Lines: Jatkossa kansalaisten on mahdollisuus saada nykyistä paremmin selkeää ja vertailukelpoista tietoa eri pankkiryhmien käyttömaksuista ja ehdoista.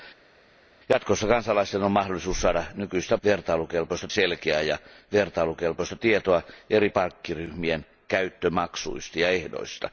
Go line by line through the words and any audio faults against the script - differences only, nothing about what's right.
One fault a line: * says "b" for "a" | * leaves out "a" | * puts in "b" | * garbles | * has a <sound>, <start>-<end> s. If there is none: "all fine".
* says "vertailukelpoista" for "paremmin"